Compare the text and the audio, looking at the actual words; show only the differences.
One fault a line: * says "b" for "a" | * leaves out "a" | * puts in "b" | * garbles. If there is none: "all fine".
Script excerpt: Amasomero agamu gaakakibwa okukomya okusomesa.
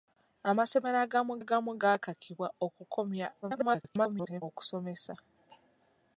* puts in "agamu"
* garbles